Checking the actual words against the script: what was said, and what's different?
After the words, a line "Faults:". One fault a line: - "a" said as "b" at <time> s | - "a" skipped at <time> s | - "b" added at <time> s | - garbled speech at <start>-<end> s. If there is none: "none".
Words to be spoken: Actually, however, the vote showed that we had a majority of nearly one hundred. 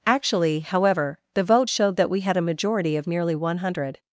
Actually, however, the vote showed that we had a majority of nearly one hundred.
Faults:
none